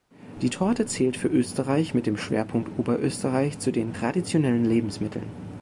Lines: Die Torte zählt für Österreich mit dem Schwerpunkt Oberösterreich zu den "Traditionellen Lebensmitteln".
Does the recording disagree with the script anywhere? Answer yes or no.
no